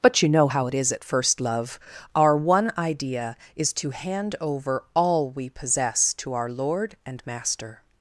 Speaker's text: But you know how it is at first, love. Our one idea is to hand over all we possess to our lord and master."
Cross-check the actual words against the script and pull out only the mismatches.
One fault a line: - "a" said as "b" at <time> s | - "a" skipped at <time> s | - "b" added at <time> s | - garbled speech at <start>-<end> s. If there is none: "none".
none